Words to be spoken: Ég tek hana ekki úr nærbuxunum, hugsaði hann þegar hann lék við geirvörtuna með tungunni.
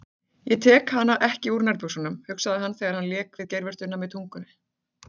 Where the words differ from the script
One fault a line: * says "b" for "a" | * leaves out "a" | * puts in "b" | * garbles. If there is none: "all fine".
all fine